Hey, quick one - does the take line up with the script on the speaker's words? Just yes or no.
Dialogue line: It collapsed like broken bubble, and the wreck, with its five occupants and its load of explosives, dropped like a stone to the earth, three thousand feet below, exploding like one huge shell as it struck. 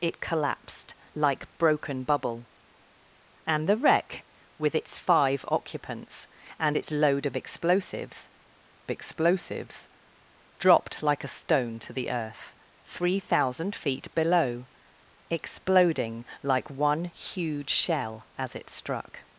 no